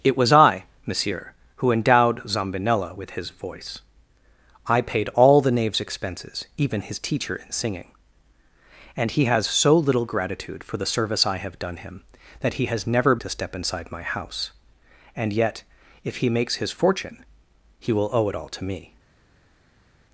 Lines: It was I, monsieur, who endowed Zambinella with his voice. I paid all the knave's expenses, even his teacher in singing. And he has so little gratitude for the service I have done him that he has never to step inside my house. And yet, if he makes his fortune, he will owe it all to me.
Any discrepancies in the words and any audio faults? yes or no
no